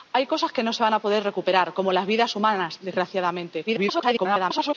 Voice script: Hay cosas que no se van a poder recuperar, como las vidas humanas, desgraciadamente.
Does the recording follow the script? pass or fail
fail